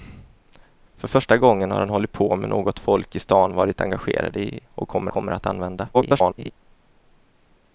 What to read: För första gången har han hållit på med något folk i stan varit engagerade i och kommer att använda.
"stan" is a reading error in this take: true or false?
false